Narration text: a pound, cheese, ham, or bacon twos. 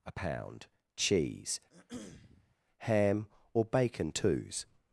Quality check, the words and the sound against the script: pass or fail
fail